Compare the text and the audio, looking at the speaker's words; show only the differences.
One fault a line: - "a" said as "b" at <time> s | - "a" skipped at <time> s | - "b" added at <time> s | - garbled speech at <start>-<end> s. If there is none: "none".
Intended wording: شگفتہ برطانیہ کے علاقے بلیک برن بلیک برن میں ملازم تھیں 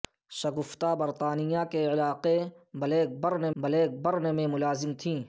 none